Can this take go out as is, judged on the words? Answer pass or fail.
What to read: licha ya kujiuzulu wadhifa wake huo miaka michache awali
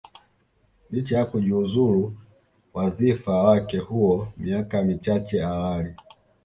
pass